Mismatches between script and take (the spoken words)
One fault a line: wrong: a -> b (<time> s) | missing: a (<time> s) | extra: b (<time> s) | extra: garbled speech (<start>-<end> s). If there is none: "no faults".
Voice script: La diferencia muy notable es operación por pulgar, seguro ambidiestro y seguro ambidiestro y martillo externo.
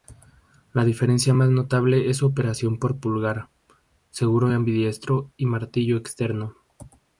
wrong: muy -> más (1.3 s)
extra: su (2.2 s)
missing: seguro ambidiestro y (5.5 s)